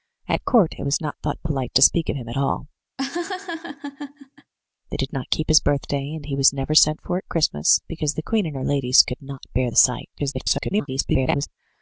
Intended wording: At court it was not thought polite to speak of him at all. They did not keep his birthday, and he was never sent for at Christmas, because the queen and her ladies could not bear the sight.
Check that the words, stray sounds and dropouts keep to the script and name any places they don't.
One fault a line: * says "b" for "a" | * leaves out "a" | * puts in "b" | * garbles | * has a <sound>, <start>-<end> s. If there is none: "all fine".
* has a laugh, 3.0-4.5 s
* garbles